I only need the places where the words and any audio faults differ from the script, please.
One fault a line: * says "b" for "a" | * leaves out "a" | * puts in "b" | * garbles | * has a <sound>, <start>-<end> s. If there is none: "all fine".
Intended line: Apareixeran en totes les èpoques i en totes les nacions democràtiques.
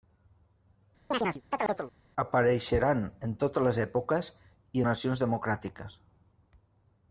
* has a chirp, 1.1-1.9 s
* leaves out "en totes les"